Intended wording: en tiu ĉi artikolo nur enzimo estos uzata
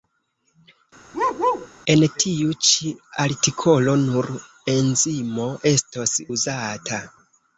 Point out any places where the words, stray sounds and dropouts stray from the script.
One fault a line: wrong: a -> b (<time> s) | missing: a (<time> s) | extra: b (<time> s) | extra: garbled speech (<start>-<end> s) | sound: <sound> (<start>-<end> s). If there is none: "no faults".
sound: bark (1.1-1.7 s)